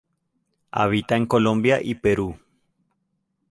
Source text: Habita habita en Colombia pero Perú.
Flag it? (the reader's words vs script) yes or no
yes